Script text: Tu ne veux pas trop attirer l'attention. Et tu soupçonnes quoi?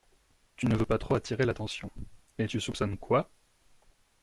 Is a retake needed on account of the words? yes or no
no